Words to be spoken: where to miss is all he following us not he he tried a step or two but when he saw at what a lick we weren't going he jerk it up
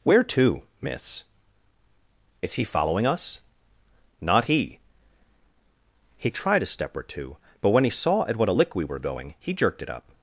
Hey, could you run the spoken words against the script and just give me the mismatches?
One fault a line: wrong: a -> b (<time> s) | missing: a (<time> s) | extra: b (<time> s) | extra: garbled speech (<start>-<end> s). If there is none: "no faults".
missing: all (2.5 s)
wrong: weren't -> were (8.8 s)
wrong: jerk -> jerked (9.5 s)